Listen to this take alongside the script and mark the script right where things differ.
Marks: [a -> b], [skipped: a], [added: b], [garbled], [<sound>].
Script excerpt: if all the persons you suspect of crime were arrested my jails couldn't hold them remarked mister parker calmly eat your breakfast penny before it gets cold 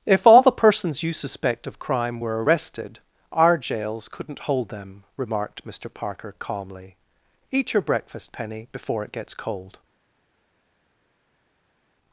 if all the persons you suspect of crime were arrested [my -> our] jails couldn't hold them remarked mister parker calmly eat your breakfast penny before it gets cold